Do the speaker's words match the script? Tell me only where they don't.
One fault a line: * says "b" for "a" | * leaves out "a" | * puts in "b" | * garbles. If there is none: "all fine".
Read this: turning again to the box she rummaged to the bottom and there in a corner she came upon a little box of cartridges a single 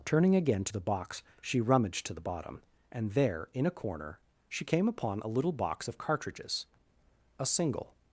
all fine